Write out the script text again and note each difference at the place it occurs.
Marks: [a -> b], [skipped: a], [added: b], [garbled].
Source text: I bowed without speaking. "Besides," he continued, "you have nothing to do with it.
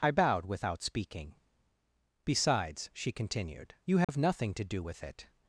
I bowed without speaking. "Besides," [he -> she] continued, "you have nothing to do with it.